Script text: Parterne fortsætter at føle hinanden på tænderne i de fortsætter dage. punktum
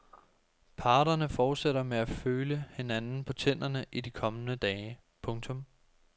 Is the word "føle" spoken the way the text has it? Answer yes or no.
yes